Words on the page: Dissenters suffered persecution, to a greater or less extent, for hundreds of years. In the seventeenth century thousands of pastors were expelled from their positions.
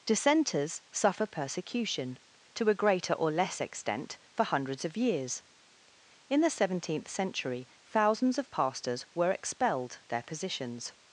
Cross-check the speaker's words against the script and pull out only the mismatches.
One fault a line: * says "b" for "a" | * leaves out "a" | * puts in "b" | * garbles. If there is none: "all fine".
* says "suffer" for "suffered"
* leaves out "from"